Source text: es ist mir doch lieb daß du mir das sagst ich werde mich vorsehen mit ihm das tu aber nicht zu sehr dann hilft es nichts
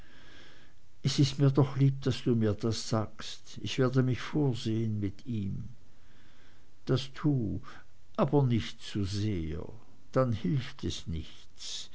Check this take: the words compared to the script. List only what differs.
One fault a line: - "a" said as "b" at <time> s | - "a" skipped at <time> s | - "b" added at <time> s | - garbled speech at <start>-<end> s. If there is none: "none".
none